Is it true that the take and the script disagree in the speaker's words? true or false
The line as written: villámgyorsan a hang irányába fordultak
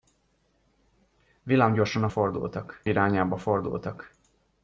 true